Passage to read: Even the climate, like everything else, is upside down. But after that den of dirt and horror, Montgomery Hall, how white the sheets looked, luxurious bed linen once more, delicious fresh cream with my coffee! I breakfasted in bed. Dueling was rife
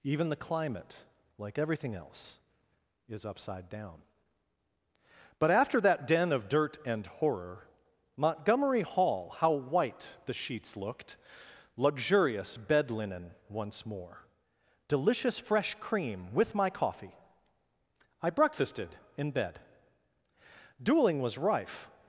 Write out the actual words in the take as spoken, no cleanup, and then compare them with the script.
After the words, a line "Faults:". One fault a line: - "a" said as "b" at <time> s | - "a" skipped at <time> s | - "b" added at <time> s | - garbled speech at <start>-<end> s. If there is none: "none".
Even the climate, like everything else, is upside down. But after that den of dirt and horror, Montgomery Hall, how white the sheets looked, luxurious bed linen once more, delicious fresh cream with my coffee! I breakfasted in bed. Dueling was rife
Faults:
none